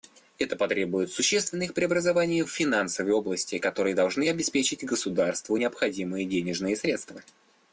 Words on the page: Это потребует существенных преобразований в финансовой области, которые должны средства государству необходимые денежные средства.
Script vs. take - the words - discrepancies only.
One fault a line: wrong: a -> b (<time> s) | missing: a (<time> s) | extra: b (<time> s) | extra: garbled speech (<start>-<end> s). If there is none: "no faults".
wrong: средства -> обеспечить (4.3 s)